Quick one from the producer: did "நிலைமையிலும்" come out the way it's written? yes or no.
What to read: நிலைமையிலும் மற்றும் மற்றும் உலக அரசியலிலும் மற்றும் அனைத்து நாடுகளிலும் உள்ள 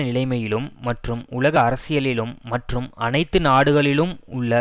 yes